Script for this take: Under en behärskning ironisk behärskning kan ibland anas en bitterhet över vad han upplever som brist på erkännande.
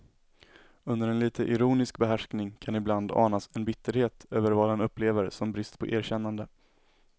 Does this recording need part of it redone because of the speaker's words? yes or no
yes